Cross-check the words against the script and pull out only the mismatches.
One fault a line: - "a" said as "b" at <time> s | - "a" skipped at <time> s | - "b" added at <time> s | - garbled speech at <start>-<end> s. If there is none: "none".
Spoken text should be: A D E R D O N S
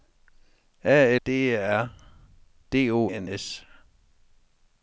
none